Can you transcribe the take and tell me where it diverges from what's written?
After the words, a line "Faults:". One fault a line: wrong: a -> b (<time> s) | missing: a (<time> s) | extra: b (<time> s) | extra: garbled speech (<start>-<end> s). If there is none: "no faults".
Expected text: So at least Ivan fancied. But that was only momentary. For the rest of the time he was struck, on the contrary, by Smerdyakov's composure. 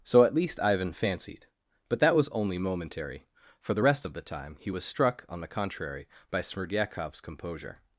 So at least Ivan fancied. But that was only momentary. For the rest of the time he was struck, on the contrary, by Smerdyakov's composure.
Faults:
no faults